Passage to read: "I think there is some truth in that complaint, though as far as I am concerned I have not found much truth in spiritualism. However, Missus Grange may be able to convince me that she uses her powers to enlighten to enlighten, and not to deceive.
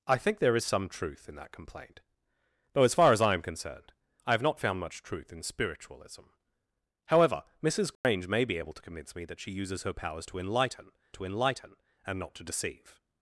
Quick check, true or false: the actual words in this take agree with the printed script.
true